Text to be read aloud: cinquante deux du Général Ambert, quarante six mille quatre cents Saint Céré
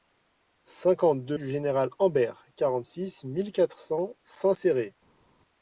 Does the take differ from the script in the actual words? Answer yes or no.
no